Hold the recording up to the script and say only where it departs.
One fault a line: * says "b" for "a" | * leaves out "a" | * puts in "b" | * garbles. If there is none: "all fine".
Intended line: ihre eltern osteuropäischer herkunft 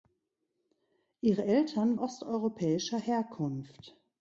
all fine